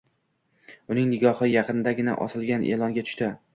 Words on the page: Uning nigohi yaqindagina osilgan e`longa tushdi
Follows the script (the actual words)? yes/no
yes